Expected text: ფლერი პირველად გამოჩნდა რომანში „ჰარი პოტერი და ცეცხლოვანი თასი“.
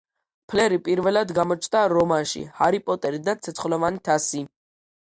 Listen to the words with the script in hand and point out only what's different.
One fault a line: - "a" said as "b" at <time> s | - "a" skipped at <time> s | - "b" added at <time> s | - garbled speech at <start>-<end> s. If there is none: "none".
none